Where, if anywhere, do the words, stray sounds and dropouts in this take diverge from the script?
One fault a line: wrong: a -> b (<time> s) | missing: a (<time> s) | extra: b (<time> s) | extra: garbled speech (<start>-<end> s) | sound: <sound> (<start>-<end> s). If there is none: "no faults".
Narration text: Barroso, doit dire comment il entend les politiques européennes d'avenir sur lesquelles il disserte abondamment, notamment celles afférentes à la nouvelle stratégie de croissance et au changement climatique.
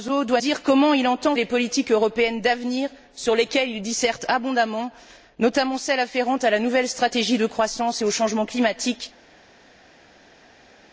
no faults